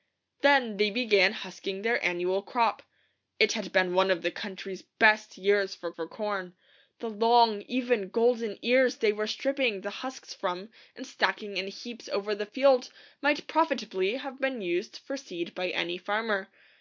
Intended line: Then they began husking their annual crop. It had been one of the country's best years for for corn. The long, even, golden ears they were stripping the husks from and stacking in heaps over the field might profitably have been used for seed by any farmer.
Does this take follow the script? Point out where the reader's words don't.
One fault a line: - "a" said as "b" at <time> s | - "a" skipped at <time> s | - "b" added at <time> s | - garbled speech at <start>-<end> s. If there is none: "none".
none